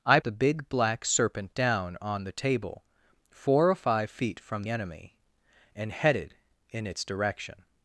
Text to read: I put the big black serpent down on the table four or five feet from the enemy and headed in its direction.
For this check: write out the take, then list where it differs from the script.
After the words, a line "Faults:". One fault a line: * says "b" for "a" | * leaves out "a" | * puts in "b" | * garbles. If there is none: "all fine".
I the big black serpent down on the table four or five feet from enemy and headed in its direction.
Faults:
* leaves out "put"
* leaves out "the"